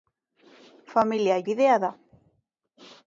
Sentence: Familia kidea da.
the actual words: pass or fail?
pass